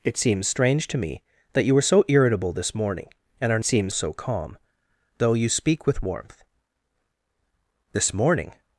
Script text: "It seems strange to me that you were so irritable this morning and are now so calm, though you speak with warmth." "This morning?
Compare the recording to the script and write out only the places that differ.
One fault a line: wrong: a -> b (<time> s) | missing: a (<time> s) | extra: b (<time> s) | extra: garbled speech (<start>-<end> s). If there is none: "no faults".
wrong: now -> seems (3.6 s)